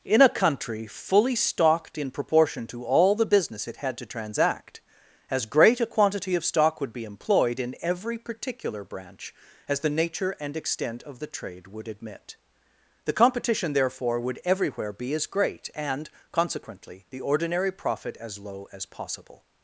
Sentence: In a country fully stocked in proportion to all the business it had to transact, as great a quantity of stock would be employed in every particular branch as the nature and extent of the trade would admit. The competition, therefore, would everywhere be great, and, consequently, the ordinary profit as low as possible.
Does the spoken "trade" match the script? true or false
true